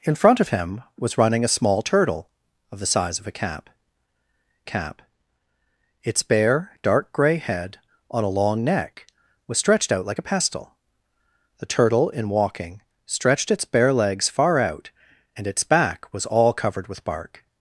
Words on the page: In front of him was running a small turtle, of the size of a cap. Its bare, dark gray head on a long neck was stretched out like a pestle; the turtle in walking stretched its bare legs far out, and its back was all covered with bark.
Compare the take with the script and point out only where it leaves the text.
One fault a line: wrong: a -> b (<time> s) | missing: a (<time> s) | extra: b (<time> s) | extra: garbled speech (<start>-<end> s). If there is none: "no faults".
extra: cap (4.6 s)